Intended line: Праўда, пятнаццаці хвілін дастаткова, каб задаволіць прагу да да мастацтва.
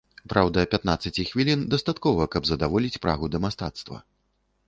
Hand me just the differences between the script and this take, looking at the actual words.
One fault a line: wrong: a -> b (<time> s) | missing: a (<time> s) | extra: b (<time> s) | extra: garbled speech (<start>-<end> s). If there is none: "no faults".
missing: да (3.4 s)